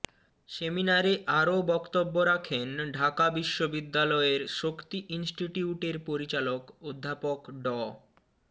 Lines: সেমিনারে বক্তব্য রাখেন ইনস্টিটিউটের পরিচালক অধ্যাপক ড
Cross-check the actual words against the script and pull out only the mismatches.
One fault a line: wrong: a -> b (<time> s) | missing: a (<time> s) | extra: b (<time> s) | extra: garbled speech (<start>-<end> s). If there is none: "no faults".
extra: আরও (1.4 s)
extra: ঢাকা বিশ্ববিদ্যালয়ের শক্তি (2.9 s)